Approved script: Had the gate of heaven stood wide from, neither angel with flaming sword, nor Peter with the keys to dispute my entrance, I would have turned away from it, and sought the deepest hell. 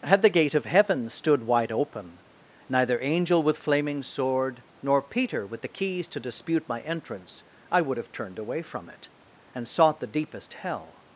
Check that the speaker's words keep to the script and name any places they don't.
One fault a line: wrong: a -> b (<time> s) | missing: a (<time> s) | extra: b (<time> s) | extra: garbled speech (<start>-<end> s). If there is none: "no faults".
wrong: from -> open (1.7 s)